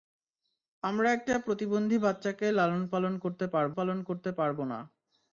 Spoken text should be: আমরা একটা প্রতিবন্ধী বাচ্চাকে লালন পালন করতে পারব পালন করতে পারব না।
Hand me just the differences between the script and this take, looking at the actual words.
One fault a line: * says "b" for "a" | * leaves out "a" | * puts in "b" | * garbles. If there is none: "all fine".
all fine